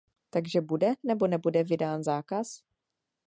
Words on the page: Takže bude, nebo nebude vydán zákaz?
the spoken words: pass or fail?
pass